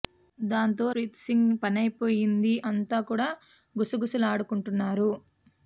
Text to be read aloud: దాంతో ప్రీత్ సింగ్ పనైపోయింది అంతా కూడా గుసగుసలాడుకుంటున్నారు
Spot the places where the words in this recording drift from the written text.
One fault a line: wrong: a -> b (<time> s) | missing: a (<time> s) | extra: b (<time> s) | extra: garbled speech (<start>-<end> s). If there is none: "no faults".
no faults